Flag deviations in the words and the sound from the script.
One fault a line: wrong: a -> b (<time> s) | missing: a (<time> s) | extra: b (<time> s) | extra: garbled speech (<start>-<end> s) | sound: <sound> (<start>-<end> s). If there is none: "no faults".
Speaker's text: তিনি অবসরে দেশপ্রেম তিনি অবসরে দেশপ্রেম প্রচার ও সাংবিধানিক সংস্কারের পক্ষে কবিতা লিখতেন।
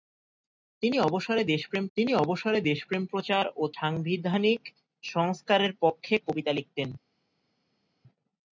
no faults